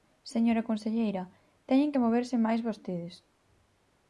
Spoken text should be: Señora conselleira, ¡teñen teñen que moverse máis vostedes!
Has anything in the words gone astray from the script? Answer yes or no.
yes